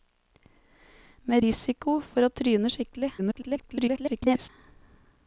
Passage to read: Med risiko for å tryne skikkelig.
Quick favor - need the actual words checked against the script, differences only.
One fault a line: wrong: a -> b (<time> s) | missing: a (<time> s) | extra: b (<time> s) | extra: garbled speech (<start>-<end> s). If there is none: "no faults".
extra: garbled speech (3.2-4.5 s)